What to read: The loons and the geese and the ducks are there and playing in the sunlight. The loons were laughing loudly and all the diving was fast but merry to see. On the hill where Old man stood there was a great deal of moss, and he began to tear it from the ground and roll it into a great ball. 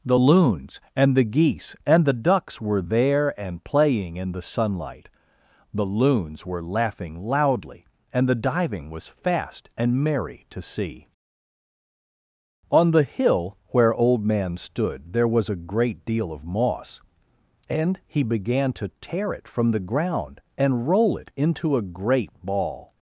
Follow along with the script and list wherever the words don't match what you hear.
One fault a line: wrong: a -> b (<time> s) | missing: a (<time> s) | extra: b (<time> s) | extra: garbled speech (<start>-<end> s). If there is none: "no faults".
wrong: are -> were (2.6 s)
missing: all (8.3 s)
wrong: but -> and (9.8 s)